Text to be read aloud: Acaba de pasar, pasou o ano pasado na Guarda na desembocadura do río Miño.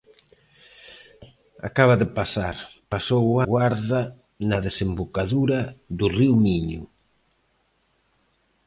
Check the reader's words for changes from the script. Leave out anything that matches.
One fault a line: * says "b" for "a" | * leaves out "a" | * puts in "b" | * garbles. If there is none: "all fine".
* leaves out "ano pasado na"